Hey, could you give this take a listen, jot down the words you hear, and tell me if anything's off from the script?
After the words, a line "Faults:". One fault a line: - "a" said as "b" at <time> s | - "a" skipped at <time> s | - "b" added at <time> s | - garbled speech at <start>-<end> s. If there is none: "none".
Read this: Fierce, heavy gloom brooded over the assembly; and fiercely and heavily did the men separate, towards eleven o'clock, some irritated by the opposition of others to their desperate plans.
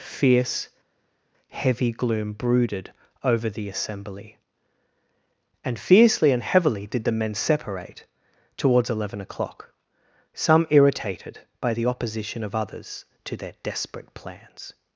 Fierce, heavy gloom brooded over the assembly; and fiercely and heavily did the men separate, towards eleven o'clock, some irritated by the opposition of others to their desperate plans.
Faults:
none